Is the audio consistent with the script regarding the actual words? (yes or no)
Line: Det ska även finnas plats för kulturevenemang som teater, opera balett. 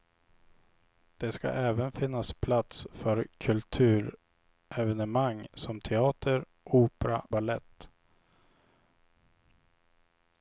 yes